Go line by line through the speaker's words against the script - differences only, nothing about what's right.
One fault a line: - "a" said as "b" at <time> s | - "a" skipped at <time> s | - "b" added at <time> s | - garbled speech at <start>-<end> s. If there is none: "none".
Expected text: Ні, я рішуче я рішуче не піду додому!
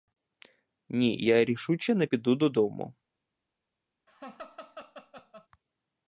- "я рішуче" skipped at 1.9 s